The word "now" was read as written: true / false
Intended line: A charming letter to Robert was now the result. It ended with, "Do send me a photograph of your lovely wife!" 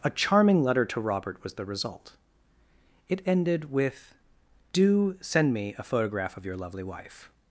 false